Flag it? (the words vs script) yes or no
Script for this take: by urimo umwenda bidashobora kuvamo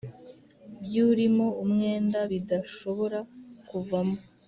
no